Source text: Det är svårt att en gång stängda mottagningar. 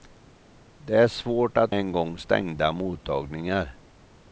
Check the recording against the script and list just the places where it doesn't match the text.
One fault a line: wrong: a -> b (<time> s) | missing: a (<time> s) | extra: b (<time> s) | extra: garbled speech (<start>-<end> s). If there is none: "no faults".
no faults